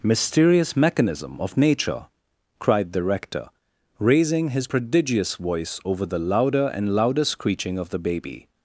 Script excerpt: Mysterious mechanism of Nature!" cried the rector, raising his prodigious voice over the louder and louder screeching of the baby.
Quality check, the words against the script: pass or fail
pass